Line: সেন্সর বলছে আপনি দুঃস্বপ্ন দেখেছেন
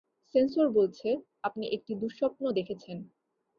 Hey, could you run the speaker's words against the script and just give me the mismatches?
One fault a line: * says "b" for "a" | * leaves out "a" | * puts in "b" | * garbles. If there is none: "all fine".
* puts in "একটি"